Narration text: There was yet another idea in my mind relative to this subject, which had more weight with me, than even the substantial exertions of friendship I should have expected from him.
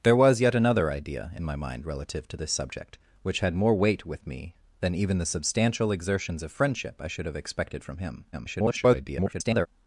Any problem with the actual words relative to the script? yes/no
yes